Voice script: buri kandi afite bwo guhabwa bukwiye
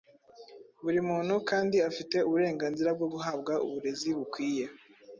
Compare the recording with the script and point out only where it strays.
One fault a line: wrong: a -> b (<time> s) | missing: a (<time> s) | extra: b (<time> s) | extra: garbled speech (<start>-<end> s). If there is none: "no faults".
extra: muntu (1.1 s)
extra: uburenganzira (2.3 s)
extra: uburezi (3.7 s)